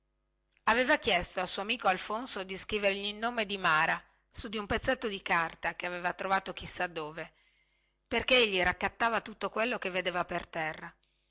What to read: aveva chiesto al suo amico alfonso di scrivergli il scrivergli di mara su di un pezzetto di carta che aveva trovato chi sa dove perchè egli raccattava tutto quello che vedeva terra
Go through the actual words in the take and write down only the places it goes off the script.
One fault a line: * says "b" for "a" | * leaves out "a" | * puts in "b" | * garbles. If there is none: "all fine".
* says "nome" for "scrivergli"
* puts in "per"